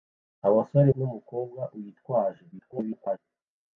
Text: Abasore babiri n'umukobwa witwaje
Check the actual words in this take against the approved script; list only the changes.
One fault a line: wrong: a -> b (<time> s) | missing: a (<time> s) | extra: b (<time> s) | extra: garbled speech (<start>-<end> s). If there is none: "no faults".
missing: babiri (0.9 s)
extra: garbled speech (2.5-3.2 s)